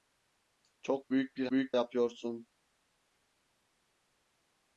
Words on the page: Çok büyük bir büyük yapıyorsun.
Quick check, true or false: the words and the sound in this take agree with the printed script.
true